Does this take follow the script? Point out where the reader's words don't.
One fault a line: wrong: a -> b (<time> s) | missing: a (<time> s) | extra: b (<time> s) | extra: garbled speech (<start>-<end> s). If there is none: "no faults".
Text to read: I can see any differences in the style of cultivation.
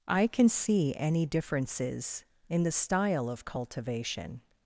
no faults